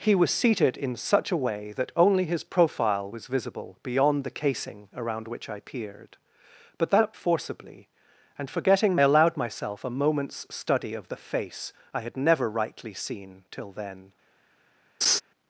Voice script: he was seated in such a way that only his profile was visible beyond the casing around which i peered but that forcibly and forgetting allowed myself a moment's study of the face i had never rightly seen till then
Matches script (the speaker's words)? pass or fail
pass